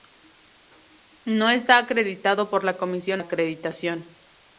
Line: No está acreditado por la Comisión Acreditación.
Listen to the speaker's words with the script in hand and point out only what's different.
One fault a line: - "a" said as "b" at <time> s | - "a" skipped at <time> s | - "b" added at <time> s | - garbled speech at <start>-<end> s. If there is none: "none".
none